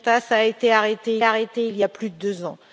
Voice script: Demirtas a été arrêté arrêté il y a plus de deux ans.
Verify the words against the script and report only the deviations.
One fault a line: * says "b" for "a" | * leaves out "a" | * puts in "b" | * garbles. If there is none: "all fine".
all fine